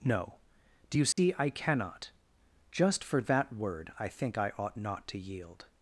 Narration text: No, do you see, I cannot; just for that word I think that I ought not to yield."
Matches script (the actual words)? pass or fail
fail